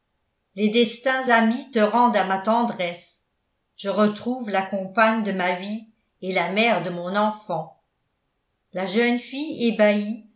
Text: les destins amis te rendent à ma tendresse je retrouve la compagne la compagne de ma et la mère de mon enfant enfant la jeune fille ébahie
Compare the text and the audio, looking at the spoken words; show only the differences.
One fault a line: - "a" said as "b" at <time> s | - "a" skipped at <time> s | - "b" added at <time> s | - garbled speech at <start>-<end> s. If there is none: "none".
- "la compagne" skipped at 5.2 s
- "vie" added at 5.6 s
- "enfant" skipped at 7.8 s